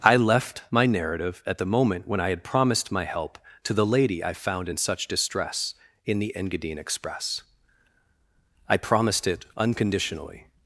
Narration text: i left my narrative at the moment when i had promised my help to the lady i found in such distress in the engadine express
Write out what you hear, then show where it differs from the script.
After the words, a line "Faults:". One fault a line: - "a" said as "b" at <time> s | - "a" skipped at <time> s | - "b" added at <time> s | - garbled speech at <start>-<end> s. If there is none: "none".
i left my narrative at the moment when i had promised my help to the lady i found in such distress in the engadine express i promised it unconditionally
Faults:
- "i promised it unconditionally" added at 8.7 s